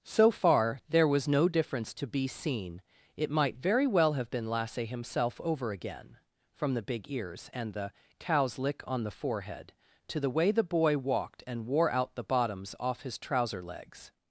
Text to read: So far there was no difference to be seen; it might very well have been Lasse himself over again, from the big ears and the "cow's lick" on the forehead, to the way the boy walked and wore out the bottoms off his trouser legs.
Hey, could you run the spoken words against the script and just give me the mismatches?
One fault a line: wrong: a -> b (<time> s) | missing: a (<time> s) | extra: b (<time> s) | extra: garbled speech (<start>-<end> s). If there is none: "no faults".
no faults